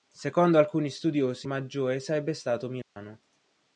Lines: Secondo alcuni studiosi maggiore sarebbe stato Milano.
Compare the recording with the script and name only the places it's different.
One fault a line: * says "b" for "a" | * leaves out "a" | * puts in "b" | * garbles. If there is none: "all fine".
all fine